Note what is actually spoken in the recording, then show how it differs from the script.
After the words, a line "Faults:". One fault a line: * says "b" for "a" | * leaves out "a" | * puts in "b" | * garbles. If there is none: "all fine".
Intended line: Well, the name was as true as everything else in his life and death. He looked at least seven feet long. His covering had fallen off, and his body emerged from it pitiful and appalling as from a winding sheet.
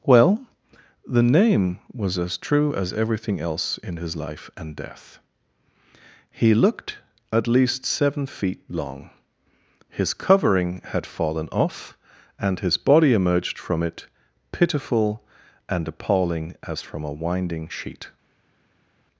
Well, the name was as true as everything else in his life and death. He looked at least seven feet long. His covering had fallen off, and his body emerged from it pitiful and appalling as from a winding sheet.
Faults:
all fine